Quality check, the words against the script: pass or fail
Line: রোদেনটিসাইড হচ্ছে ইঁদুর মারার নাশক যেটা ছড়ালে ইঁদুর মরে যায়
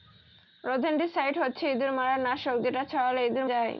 fail